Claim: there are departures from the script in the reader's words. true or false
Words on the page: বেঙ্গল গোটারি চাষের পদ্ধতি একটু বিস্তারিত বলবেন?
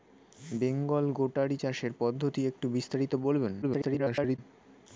true